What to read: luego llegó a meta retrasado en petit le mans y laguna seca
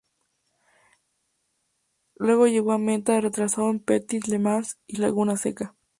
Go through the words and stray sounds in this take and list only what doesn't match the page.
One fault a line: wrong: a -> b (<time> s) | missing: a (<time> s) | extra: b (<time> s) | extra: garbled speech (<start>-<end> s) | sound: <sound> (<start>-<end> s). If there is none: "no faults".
no faults